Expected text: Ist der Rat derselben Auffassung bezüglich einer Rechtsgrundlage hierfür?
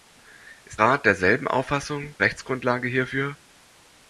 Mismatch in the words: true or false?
true